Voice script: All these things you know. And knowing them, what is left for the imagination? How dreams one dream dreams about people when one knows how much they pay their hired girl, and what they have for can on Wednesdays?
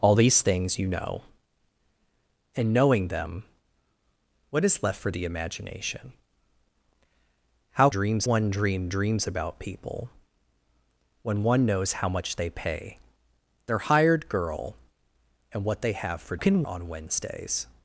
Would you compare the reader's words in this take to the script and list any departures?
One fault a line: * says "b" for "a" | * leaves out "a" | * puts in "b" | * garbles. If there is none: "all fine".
all fine